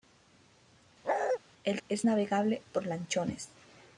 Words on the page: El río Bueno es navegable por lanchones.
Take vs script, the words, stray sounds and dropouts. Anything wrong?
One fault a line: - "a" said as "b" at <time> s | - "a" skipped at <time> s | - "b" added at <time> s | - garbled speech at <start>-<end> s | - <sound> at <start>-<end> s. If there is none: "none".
- bark at 1.0-1.4 s
- "río Bueno" skipped at 1.8 s